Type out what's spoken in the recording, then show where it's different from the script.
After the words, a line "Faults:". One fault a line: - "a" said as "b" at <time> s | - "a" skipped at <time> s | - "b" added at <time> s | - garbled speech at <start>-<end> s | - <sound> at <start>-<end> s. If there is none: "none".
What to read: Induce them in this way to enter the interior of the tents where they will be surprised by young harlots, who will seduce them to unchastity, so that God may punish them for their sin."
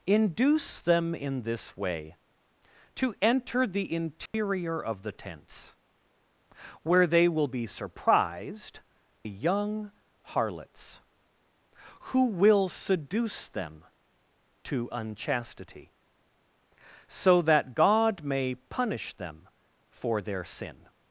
Induce them in this way to enter the interior of the tents where they will be surprised young harlots, who will seduce them to unchastity, so that God may punish them for their sin."
Faults:
- dropout at 4.3-4.3 s
- "by" skipped at 8.8 s